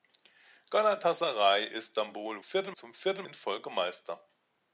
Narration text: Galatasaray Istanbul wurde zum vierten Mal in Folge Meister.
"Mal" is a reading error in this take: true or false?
true